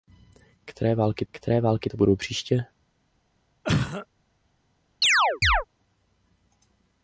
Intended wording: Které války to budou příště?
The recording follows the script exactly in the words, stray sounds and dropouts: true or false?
false